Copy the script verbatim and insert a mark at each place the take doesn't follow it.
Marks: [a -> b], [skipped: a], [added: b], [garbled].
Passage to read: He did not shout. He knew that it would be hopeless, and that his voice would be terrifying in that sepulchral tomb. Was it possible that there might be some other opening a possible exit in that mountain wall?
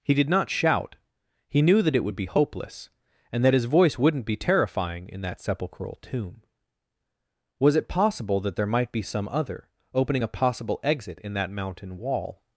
He did not shout. He knew that it would be hopeless, and that his voice [would -> wouldn't] be terrifying in that sepulchral tomb. Was it possible that there might be some other opening a possible exit in that mountain wall?